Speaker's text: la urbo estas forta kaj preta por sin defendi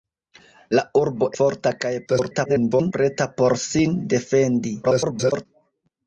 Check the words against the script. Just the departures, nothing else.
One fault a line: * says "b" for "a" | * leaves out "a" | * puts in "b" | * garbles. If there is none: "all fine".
* leaves out "estas"
* garbles
* garbles